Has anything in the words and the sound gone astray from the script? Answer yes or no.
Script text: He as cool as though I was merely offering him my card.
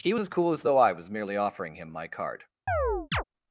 yes